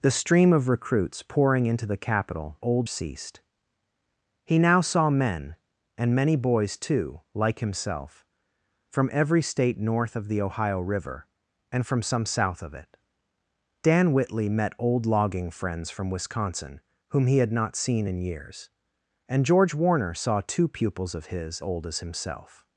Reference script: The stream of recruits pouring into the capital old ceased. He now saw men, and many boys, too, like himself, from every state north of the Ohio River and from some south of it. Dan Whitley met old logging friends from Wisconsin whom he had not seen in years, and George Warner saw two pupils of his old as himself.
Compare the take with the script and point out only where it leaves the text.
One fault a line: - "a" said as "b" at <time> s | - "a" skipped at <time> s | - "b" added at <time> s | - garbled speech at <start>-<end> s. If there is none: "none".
none